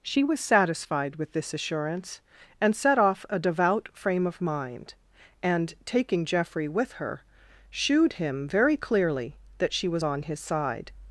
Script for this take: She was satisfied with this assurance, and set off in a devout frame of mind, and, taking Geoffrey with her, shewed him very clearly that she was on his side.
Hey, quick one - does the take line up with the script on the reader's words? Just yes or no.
no